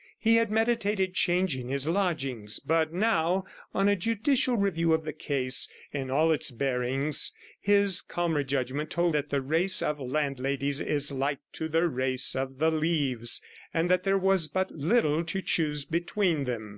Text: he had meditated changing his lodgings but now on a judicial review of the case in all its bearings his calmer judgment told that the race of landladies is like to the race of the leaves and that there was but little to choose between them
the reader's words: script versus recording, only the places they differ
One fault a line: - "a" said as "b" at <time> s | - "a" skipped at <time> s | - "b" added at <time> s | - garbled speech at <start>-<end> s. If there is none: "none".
none